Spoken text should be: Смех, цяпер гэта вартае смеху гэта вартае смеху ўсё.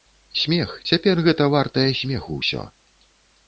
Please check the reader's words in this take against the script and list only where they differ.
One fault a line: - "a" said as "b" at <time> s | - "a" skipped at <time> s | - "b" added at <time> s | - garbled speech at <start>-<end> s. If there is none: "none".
- "гэта вартае смеху" skipped at 2.4 s